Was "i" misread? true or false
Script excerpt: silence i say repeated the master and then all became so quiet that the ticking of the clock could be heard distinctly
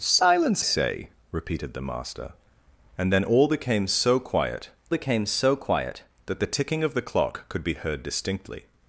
true